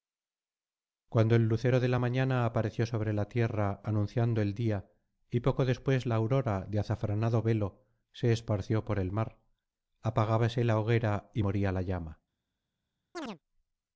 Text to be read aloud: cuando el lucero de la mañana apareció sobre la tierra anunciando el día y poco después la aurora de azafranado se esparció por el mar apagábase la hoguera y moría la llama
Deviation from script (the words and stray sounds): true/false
true